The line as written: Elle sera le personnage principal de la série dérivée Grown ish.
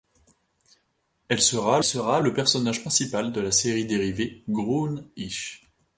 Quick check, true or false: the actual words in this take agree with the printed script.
false